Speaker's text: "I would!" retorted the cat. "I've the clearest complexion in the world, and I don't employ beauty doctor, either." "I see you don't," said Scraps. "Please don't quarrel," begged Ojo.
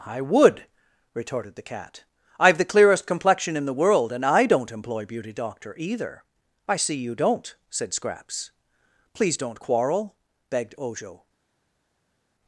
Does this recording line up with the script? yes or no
yes